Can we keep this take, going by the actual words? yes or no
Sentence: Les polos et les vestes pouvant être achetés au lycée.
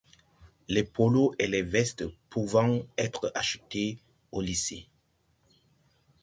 yes